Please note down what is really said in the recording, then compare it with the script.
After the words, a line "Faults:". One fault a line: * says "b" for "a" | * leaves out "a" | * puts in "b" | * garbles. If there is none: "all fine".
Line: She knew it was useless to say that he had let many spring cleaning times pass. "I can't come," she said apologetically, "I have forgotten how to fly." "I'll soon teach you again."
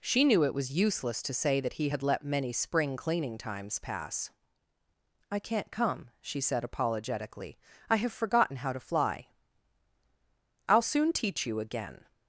She knew it was useless to say that he had let many spring cleaning times pass. "I can't come," she said apologetically, "I have forgotten how to fly." "I'll soon teach you again."
Faults:
all fine